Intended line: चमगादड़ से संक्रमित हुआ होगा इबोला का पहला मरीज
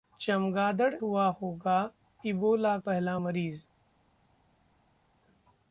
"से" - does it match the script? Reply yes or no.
no